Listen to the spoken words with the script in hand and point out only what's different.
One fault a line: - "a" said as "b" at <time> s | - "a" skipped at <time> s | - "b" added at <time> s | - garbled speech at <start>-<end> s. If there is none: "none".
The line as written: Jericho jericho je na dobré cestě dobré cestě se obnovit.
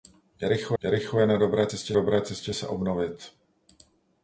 none